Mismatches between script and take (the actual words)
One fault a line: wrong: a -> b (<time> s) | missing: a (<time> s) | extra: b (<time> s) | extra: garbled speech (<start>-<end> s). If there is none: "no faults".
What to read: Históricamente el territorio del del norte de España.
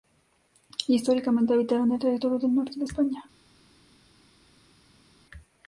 extra: habitaron (1.5 s)
missing: del (2.5 s)